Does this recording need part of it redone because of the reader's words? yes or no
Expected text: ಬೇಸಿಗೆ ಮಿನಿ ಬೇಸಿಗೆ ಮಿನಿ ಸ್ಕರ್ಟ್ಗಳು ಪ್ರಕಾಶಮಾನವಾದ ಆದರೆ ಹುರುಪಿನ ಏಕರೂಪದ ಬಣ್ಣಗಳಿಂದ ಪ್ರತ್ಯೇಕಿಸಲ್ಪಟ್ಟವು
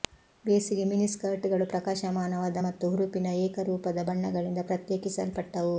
yes